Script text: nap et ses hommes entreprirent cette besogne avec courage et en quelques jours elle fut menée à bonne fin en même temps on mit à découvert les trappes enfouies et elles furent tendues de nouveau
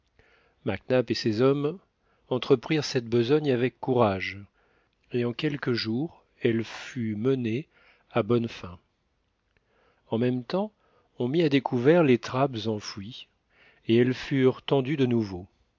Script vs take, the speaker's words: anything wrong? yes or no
no